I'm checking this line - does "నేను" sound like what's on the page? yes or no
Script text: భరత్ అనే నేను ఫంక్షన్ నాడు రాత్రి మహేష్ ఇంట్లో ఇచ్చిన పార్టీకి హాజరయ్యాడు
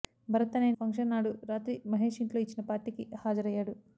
no